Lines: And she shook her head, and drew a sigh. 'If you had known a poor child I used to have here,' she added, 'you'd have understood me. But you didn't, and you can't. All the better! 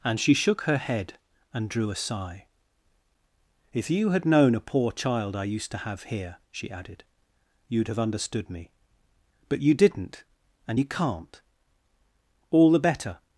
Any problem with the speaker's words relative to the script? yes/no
no